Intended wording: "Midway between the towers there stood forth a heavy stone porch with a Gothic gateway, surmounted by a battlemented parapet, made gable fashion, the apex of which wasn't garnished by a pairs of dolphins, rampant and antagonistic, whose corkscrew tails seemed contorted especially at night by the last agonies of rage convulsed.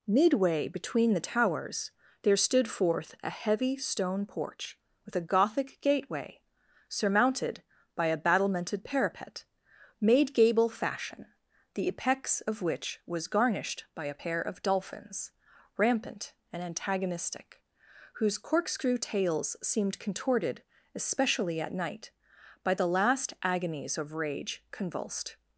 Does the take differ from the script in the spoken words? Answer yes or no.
yes